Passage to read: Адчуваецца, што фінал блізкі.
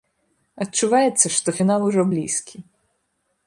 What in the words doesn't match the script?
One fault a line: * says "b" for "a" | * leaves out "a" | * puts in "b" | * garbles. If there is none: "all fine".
* puts in "ужо"